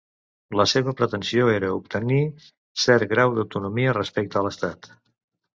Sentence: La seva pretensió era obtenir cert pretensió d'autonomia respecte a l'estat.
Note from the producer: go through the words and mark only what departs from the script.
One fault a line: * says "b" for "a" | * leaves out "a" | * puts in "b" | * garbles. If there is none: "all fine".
* says "grau" for "pretensió"